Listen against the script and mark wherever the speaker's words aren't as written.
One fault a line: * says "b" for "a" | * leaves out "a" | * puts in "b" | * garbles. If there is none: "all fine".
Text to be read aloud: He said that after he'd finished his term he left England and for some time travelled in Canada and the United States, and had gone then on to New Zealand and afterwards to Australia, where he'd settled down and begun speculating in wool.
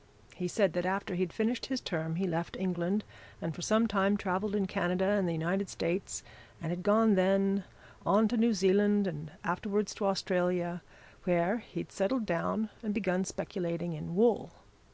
all fine